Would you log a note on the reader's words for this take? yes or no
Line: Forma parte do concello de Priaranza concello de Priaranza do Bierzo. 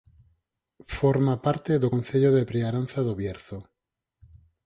yes